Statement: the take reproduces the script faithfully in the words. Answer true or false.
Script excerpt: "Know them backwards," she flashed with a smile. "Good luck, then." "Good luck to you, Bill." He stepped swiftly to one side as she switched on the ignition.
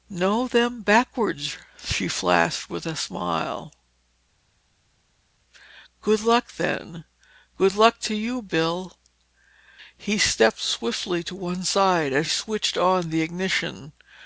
false